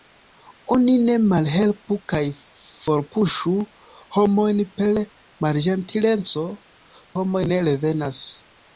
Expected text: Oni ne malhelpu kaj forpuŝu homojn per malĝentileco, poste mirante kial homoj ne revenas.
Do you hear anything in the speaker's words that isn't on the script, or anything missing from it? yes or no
yes